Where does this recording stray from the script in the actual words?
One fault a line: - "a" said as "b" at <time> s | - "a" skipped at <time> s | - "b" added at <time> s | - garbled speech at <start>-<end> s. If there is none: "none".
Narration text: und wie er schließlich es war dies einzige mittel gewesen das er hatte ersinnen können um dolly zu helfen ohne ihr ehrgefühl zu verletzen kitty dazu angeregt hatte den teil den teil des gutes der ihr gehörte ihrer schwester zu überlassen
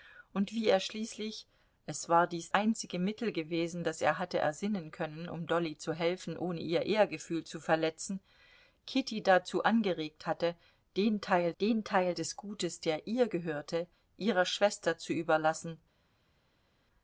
none